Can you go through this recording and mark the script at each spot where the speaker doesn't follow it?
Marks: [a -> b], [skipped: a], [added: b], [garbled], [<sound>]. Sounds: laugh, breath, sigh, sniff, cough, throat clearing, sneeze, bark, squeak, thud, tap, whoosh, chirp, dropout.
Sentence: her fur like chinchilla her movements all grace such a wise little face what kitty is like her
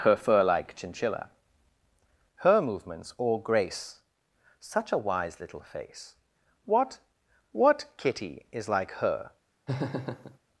her fur like chinchilla her movements all grace such a wise little face what [added: what] kitty is like her [laugh]